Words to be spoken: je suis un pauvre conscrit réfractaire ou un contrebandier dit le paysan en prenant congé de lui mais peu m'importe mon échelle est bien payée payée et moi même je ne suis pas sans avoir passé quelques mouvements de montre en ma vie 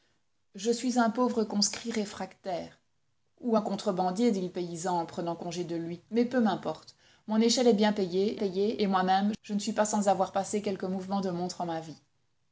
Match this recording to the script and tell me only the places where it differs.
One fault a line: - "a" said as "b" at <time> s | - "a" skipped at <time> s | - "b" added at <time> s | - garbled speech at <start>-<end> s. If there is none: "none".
none